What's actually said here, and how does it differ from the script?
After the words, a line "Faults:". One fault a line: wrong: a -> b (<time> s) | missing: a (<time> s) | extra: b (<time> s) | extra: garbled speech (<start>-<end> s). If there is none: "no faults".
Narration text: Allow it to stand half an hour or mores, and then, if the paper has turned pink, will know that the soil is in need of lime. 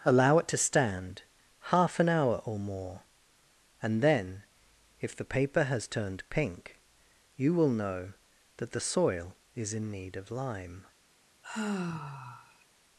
Allow it to stand half an hour or more, and then, if the paper has turned pink, you will know that the soil is in need of lime.
Faults:
wrong: mores -> more (2.6 s)
extra: you (7.3 s)